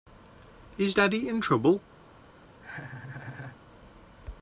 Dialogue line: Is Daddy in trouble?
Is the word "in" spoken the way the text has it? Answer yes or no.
yes